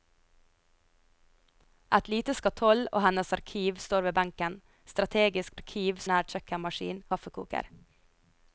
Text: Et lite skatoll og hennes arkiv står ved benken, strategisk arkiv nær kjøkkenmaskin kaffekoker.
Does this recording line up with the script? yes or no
yes